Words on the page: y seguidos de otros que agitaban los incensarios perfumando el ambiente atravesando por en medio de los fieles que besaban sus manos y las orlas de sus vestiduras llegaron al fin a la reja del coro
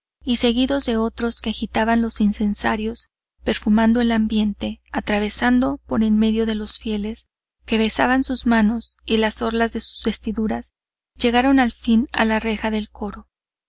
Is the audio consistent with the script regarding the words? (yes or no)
yes